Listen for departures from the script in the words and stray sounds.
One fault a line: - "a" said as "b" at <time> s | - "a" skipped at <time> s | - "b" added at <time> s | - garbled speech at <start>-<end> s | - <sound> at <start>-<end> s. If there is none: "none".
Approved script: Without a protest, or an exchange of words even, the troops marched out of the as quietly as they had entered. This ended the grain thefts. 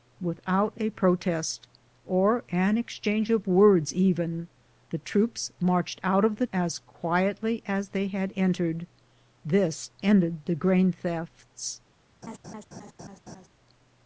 - laugh at 12.2-13.5 s